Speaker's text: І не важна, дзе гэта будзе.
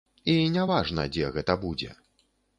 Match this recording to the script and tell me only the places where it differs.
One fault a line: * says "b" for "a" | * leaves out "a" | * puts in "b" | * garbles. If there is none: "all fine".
all fine